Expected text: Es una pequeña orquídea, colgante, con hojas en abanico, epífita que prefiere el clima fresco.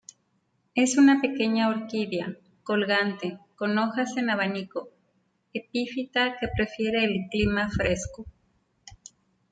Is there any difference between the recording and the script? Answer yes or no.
no